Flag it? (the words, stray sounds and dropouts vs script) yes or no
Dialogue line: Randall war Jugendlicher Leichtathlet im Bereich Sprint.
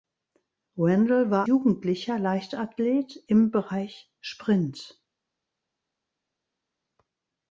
no